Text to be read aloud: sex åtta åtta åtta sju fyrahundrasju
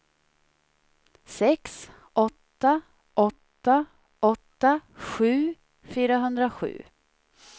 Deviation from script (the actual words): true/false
false